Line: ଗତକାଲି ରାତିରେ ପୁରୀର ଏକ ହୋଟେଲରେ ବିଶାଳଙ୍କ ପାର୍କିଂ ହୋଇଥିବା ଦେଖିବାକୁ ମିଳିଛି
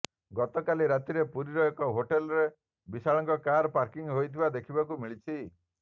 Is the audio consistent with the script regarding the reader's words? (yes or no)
no